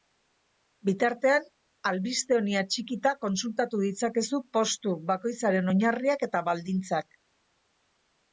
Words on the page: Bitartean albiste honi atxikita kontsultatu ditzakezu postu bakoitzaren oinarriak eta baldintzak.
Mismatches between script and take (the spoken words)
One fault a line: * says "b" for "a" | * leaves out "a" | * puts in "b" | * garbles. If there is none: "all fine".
all fine